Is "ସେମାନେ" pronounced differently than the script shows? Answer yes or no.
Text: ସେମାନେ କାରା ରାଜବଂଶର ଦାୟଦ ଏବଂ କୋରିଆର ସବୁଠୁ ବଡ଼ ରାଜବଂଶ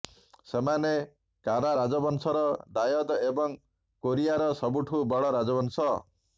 no